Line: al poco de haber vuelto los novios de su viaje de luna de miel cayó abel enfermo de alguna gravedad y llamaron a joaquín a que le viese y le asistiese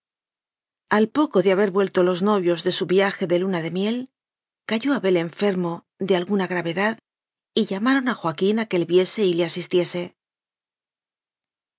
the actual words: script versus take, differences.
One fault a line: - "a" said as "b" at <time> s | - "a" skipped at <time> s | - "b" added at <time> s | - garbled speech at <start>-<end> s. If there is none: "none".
none